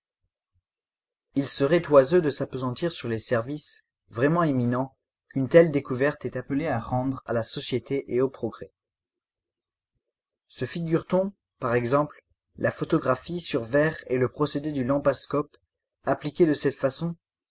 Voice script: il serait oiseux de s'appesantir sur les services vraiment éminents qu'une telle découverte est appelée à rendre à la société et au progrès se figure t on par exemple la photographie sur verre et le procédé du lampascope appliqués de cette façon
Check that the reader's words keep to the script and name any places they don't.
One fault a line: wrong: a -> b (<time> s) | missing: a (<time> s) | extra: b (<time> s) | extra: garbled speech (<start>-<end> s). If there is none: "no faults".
no faults